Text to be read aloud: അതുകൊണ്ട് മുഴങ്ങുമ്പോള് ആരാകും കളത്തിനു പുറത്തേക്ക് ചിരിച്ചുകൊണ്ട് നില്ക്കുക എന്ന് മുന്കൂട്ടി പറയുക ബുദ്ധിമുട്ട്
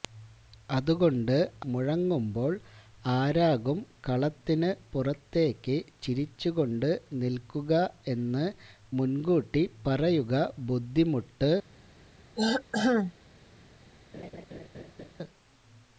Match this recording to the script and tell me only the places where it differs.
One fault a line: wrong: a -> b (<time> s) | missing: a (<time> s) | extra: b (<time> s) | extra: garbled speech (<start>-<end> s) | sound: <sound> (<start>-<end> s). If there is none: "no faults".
sound: throat clearing (12.4-13.1 s)
sound: laugh (14.1-15.1 s)